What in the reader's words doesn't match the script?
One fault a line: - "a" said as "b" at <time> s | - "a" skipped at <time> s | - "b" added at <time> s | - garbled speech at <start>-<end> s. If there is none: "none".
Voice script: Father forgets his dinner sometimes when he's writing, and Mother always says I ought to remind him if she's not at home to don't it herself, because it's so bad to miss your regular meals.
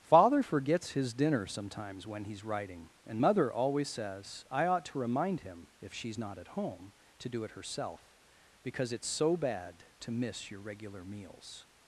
- "don't" said as "do" at 7.3 s